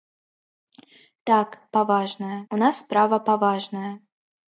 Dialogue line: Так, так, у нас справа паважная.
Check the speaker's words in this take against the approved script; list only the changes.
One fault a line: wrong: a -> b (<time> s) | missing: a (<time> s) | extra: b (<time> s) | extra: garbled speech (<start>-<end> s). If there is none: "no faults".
wrong: так -> паважная (1.8 s)